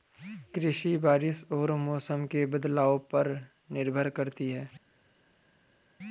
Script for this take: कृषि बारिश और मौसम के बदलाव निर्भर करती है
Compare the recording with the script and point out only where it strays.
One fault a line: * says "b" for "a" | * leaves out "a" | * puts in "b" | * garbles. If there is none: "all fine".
* puts in "पर"